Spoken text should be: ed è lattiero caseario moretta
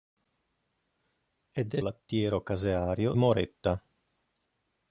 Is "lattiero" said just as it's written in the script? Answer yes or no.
yes